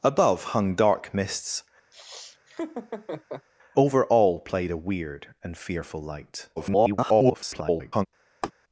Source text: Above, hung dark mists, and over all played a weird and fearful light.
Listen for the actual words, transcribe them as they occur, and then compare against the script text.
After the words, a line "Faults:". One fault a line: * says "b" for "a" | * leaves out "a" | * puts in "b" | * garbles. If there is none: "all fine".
Above, hung dark mists, over all played a weird and fearful light. [garbled]
Faults:
* leaves out "and"
* garbles